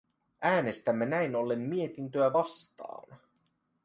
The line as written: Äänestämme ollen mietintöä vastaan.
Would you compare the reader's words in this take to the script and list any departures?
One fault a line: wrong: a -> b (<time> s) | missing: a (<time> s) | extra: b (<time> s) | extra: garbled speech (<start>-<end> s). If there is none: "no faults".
extra: näin (1.1 s)